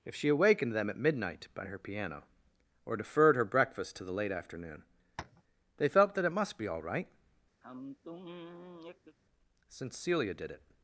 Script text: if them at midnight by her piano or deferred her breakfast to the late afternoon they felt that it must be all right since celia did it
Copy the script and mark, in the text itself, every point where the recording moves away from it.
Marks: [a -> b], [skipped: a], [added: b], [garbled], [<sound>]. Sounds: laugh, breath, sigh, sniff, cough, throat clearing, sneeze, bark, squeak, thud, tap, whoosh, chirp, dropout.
if [added: she awakened] them at midnight by her piano or deferred her breakfast to the late afternoon [tap] they felt that it must be all right [sigh] since celia did it